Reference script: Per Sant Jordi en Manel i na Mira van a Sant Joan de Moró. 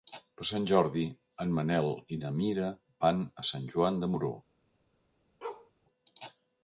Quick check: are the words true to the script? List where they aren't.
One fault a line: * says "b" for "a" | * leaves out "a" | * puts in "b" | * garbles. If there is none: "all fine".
all fine